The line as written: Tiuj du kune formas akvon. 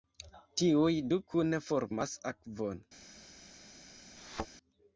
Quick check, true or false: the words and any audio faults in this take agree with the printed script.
false